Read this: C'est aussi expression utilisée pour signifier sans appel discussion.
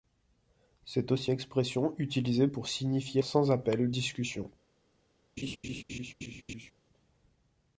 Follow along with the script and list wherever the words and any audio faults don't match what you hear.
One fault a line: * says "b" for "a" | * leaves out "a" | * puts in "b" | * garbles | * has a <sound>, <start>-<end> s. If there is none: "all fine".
* has a laugh, 5.4-6.7 s